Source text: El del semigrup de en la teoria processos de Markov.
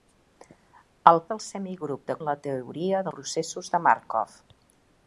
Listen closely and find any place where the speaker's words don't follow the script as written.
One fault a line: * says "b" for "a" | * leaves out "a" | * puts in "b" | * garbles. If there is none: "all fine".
all fine